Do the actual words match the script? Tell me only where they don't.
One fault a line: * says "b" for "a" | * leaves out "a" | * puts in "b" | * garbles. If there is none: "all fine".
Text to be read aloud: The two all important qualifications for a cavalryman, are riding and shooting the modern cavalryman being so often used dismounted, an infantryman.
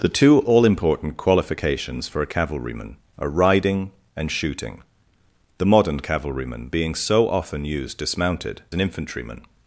all fine